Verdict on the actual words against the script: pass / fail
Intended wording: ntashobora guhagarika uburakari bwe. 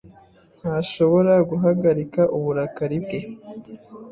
pass